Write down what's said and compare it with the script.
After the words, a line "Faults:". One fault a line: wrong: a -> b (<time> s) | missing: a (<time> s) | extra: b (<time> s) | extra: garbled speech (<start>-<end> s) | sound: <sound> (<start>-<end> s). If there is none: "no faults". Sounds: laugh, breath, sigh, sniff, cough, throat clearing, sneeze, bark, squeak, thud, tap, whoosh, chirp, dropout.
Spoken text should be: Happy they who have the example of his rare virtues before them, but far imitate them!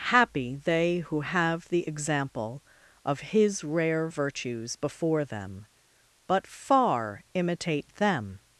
Happy they who have the example of his rare virtues before them, but far imitate them!
Faults:
no faults